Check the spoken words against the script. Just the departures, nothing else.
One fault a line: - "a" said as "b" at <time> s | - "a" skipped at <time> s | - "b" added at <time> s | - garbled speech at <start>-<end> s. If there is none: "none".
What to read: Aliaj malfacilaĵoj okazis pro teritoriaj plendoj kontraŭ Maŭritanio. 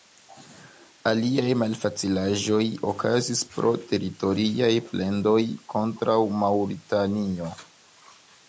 none